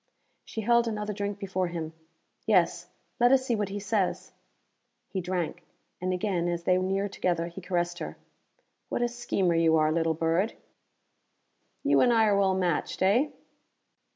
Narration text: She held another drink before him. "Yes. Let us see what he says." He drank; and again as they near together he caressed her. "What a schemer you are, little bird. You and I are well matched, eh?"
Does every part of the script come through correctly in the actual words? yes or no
yes